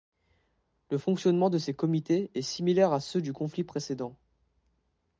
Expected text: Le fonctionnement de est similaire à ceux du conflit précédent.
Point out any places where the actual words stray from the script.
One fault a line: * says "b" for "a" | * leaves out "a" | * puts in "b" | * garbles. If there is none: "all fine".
* puts in "ces comités"